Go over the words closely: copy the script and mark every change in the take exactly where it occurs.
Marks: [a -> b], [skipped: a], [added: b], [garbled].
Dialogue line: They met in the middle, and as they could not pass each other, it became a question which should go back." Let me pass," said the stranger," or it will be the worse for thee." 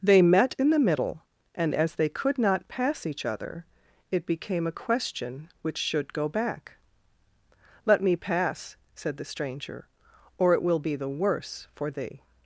They met in the middle, and as they could not pass each other, it became a question which should go back." Let me pass," said the stranger," or it will be the worse for thee."